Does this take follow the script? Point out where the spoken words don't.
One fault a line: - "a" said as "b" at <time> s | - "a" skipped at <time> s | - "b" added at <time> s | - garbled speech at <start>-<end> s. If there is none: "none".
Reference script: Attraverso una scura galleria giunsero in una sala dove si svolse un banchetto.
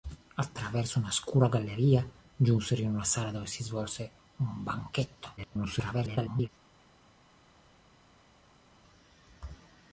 - garbled speech at 5.4-6.5 s